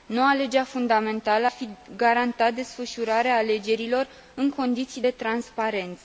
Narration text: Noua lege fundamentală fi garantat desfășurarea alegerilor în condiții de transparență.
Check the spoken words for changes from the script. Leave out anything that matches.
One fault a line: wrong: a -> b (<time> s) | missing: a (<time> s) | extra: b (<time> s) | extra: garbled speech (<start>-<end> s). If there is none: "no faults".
no faults